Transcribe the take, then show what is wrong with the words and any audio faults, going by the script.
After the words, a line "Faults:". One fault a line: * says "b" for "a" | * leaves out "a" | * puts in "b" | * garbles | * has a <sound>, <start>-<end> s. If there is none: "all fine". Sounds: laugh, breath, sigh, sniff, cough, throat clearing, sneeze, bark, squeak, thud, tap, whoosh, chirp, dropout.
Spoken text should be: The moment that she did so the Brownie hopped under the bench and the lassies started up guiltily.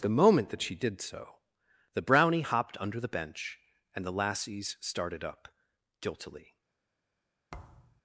The moment that she did so the Brownie hopped under the bench and the lassies started up guiltily.
Faults:
* has a thud, 7.5-8.0 s